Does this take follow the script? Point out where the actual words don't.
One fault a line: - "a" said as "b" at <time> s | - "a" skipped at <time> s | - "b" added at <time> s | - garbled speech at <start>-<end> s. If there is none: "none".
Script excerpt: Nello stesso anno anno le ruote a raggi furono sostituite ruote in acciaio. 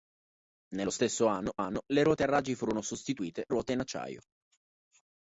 none